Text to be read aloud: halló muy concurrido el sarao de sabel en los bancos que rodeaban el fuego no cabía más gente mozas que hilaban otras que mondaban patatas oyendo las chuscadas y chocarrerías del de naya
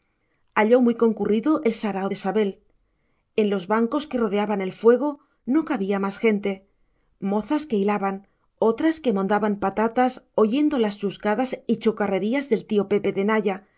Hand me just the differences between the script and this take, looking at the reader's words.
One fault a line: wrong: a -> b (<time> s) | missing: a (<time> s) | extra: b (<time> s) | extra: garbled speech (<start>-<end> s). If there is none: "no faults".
extra: tío pepe (12.7 s)